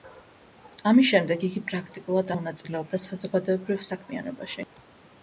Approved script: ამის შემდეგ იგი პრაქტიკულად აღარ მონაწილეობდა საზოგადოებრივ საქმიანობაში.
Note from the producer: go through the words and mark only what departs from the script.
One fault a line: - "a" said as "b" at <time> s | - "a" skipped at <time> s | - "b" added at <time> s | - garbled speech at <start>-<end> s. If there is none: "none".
- "აღარ" skipped at 2.3 s